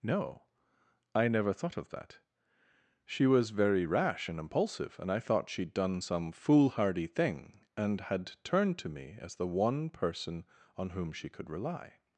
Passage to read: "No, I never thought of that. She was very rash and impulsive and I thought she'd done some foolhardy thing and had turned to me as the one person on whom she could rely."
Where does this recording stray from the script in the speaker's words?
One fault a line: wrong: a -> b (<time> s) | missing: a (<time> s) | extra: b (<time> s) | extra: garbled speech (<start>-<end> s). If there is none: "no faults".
no faults